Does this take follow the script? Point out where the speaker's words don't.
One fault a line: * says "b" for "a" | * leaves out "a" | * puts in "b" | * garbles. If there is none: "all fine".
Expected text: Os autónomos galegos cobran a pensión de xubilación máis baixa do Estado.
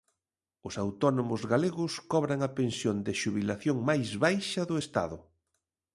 all fine